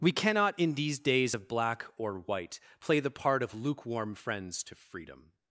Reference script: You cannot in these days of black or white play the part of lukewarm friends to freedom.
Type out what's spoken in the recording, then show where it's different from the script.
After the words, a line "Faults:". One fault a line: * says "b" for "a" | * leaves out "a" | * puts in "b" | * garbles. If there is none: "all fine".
We cannot in these days of black or white play the part of lukewarm friends to freedom.
Faults:
* says "We" for "You"